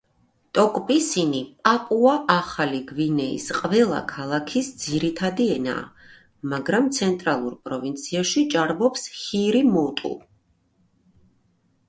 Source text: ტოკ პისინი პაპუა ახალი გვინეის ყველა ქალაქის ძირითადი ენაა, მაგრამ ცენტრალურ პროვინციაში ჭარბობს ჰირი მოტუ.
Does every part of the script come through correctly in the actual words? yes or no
yes